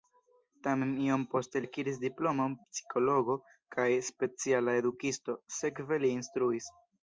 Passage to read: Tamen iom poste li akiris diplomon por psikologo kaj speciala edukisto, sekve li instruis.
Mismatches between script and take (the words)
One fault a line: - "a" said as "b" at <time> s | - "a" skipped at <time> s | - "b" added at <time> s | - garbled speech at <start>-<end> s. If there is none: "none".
- "li" skipped at 1.6 s
- "por" skipped at 2.5 s